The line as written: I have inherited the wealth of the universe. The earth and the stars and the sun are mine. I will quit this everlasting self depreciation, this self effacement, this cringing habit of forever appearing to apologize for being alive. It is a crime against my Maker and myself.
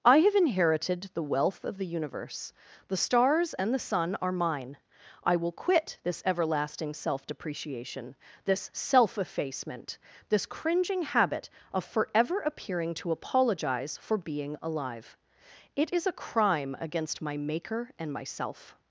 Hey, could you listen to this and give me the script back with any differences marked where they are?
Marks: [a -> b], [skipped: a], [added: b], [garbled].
I have inherited the wealth of the universe. The [skipped: earth and the] stars and the sun are mine. I will quit this everlasting self depreciation, this self effacement, this cringing habit of forever appearing to apologize for being alive. It is a crime against my Maker and myself.